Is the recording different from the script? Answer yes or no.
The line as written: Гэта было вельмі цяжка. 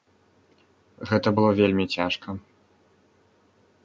no